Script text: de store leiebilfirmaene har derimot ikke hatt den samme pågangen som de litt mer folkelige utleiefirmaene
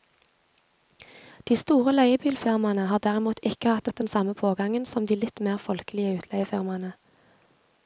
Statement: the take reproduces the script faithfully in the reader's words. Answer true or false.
false